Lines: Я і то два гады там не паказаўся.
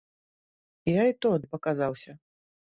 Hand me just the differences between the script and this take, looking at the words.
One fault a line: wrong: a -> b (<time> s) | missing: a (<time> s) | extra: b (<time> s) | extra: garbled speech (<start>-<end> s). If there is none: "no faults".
missing: два гады там (1.3 s)